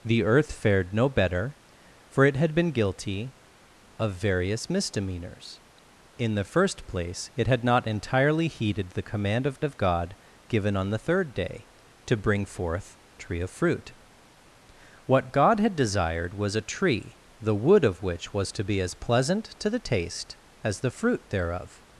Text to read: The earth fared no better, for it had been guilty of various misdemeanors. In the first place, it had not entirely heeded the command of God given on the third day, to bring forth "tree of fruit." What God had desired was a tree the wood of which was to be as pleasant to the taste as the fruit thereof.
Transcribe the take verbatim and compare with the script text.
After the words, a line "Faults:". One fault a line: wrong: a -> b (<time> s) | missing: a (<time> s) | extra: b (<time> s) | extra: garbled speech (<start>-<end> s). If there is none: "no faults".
The earth fared no better, for it had been guilty of various misdemeanors. In the first place, it had not entirely heeded the command of of God given on the third day, to bring forth "tree of fruit." What God had desired was a tree the wood of which was to be as pleasant to the taste as the fruit thereof.
Faults:
extra: of (9.6 s)